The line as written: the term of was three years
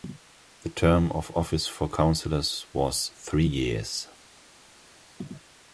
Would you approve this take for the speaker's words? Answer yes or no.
no